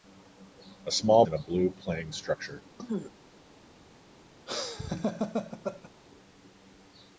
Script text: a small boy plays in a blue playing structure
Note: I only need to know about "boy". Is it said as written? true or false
false